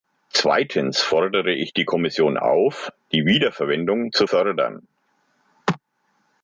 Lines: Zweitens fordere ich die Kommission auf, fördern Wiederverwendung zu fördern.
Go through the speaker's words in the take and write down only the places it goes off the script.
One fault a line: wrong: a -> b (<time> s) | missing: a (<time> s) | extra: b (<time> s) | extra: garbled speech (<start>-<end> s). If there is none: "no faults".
wrong: fördern -> die (3.1 s)